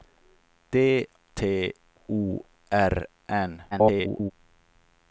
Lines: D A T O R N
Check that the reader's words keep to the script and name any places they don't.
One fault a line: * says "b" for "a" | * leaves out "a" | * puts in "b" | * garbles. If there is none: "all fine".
* leaves out "A"
* garbles